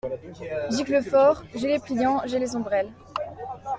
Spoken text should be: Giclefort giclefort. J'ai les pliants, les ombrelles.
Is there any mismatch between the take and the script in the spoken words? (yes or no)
yes